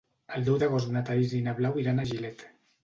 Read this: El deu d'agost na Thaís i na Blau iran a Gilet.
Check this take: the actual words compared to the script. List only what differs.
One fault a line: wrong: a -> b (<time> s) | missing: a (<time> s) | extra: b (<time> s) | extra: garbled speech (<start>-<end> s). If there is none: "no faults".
no faults